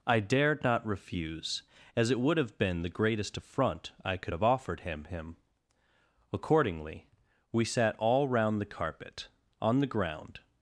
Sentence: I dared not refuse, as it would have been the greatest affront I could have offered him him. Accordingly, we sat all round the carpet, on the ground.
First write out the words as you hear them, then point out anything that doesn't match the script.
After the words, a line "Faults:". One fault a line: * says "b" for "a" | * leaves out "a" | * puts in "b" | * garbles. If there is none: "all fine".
I dared not refuse, as it would have been the greatest affront I could have offered him him. Accordingly, we sat all round the carpet, on the ground.
Faults:
all fine